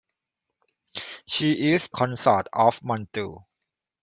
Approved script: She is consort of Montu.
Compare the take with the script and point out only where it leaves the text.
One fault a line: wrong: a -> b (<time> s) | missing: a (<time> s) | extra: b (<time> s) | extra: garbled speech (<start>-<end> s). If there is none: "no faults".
no faults